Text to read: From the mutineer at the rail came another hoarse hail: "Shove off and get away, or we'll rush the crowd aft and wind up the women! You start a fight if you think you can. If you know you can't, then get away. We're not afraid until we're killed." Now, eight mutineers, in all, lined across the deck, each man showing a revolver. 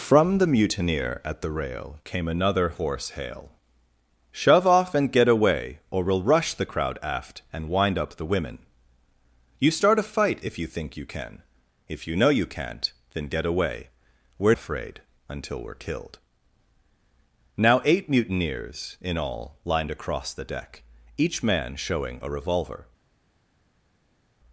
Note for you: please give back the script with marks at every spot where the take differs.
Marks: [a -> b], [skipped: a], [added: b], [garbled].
From the mutineer at the rail came another hoarse hail: "Shove off and get away, or we'll rush the crowd aft and wind up the women! You start a fight if you think you can. If you know you can't, then get away. We're [skipped: not] afraid until we're killed." Now, eight mutineers, in all, lined across the deck, each man showing a revolver.